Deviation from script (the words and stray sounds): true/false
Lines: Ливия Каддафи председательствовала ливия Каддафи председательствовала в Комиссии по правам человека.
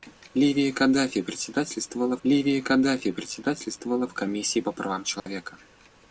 true